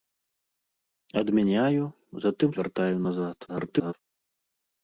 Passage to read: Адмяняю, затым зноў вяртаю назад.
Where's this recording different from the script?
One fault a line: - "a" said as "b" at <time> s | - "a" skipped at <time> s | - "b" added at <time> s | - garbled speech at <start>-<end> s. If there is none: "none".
- "зноў" skipped at 2.5 s
- garbled speech at 3.5-3.9 s